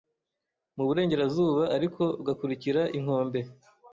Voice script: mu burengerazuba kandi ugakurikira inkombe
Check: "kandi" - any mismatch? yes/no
yes